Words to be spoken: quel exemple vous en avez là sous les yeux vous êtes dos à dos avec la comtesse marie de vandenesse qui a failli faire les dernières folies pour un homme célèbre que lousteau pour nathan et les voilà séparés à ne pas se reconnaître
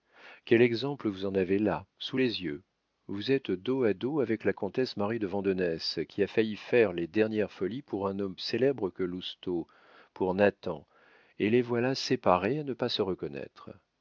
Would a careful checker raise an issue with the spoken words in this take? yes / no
no